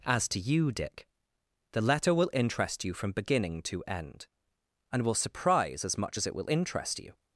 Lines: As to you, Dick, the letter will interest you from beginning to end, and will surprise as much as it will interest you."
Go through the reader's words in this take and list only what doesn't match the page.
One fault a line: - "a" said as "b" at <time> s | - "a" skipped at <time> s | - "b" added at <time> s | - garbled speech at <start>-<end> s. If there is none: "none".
none